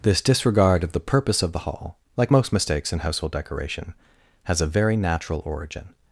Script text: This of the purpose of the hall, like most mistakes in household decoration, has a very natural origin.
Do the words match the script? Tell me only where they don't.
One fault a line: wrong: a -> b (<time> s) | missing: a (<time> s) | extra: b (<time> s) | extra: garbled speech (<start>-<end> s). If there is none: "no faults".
extra: disregard (0.2 s)